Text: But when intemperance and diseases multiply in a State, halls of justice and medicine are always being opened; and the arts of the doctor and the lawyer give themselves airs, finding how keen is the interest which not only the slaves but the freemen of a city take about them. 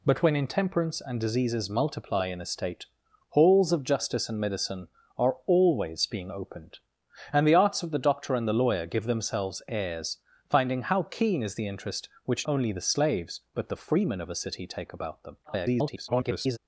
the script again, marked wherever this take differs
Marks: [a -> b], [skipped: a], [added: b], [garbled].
But when intemperance and diseases multiply in a State, halls of justice and medicine are always being opened; and the arts of the doctor and the lawyer give themselves airs, finding how keen is the interest which [skipped: not] only the slaves but the freemen of a city take about them. [garbled]